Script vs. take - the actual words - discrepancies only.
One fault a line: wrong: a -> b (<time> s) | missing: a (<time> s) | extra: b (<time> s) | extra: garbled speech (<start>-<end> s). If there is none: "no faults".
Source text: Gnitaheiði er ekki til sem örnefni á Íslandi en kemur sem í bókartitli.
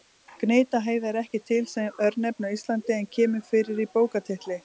wrong: sem -> fyrir (3.5 s)